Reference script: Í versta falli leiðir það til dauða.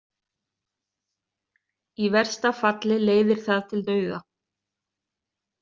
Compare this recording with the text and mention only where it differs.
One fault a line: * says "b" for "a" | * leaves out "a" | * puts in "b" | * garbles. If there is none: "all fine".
all fine